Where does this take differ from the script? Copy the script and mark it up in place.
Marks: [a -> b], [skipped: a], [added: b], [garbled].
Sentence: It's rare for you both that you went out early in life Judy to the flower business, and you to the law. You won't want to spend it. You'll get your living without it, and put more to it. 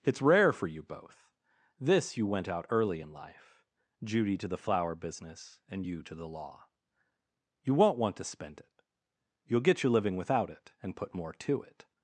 It's rare for you both [that -> this] you went out early in life Judy to the flower business, and you to the law. You won't want to spend it. You'll get your living without it, and put more to it.